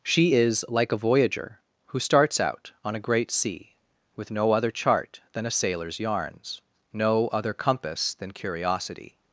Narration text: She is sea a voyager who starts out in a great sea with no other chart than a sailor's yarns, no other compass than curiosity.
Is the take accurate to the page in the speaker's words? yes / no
no